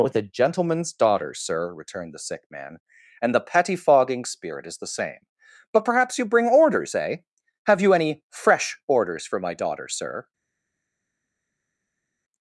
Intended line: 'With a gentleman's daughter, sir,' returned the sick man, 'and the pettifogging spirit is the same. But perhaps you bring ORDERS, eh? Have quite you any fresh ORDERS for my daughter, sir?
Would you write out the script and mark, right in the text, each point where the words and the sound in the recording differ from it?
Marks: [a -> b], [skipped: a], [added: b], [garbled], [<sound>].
'With a gentleman's daughter, sir,' returned the sick man, 'and the pettifogging spirit is the same. But perhaps you bring ORDERS, eh? Have [skipped: quite] you any fresh ORDERS for my daughter, sir?